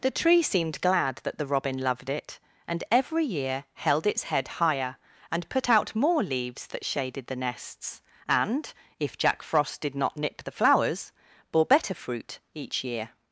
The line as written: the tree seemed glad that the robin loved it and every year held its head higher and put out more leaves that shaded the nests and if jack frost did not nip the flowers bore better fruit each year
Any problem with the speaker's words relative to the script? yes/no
no